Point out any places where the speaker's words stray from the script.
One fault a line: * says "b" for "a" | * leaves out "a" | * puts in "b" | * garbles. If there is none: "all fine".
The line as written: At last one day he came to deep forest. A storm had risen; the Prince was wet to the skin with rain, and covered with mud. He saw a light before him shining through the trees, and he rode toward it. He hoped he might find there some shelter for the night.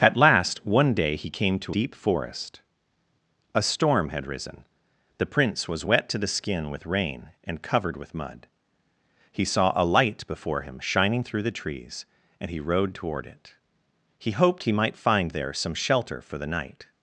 all fine